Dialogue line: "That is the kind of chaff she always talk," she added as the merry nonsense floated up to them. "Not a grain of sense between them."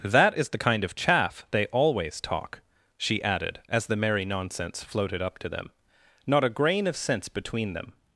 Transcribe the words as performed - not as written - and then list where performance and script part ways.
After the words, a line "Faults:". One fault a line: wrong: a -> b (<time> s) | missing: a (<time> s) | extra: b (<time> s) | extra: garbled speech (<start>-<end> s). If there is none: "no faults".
"That is the kind of chaff they always talk," she added as the merry nonsense floated up to them. "Not a grain of sense between them."
Faults:
wrong: she -> they (1.5 s)